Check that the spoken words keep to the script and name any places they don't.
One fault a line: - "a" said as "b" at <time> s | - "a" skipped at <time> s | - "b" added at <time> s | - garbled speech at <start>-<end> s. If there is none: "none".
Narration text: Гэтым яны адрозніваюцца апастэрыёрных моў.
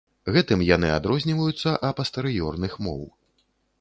none